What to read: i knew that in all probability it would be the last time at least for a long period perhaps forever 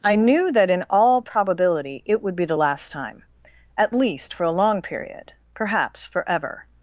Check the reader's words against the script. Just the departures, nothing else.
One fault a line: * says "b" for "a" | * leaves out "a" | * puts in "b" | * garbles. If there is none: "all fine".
all fine